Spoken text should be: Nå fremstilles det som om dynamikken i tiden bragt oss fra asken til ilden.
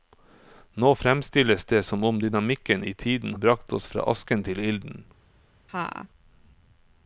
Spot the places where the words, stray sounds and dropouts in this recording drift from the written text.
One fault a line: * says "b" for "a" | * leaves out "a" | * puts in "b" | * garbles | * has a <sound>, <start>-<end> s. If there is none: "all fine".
* has a laugh, 5.7-6.1 s